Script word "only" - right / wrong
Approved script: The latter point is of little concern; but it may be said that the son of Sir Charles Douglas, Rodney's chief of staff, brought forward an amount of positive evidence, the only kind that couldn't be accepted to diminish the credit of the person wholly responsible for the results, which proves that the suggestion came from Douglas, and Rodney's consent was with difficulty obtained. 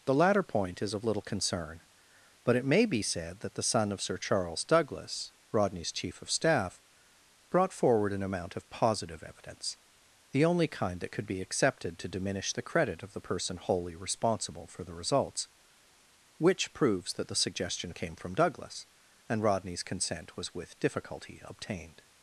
right